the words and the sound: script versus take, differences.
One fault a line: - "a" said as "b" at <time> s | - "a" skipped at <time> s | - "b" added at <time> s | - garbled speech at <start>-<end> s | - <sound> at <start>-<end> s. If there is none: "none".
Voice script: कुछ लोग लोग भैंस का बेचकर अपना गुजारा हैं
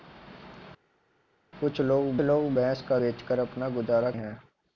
none